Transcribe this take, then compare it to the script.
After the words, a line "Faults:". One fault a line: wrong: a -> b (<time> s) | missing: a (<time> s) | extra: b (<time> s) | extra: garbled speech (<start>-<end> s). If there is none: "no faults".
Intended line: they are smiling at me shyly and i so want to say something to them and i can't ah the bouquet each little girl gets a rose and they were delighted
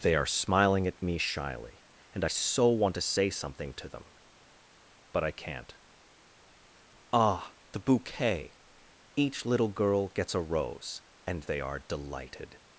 they are smiling at me shyly and i so want to say something to them but i can't ah the bouquet each little girl gets a rose and they are delighted
Faults:
wrong: and -> but (5.1 s)
wrong: were -> are (11.6 s)